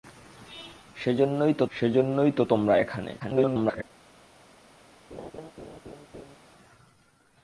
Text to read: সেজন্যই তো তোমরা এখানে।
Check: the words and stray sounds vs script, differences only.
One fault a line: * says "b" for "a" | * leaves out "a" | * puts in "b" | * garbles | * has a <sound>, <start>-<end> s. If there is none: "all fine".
* puts in "সেজন্যই তো"
* garbles
* has a laugh, 5.1-6.4 s